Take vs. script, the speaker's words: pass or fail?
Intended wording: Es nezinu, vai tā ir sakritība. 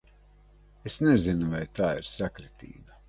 pass